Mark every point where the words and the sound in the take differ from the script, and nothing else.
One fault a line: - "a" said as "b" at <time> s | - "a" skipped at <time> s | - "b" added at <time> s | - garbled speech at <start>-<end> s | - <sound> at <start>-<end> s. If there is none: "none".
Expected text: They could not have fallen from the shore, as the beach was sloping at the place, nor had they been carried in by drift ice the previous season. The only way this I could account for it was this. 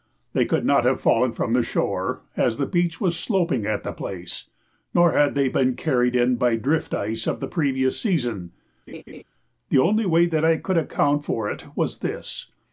- "of" added at 7.3 s
- laugh at 8.9-9.2 s
- "this" said as "that" at 10.3 s